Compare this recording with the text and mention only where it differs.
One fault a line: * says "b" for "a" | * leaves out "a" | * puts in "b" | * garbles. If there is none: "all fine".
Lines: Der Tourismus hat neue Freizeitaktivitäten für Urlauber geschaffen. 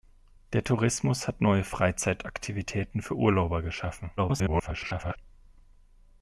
* garbles